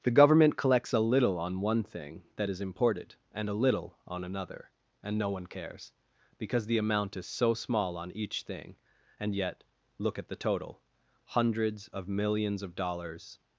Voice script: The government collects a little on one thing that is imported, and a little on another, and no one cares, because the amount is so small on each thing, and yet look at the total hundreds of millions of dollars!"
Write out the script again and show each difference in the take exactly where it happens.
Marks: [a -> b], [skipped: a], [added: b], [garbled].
The government collects a little on one thing that is imported, and a little on another, and no one cares, because the amount is so small on each thing, and yet look at the total hundreds of millions of dollars!"